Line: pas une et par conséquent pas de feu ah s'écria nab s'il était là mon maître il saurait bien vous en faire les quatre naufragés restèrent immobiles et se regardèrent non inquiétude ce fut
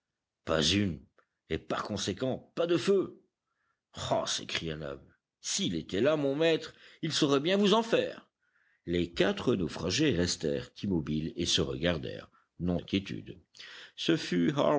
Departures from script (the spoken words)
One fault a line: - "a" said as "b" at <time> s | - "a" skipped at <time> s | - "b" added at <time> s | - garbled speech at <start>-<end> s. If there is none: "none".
none